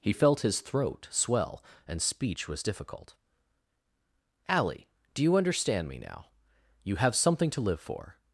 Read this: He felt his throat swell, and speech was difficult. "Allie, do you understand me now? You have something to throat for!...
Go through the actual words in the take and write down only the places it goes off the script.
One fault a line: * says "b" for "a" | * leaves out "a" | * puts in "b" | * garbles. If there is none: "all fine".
* says "live" for "throat"